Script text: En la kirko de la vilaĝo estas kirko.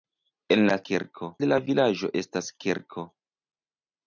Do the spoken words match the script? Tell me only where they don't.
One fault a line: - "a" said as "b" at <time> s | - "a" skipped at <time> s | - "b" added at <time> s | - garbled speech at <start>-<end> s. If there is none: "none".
none